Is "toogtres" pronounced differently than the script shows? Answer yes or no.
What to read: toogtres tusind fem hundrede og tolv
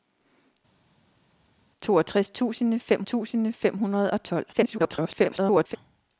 no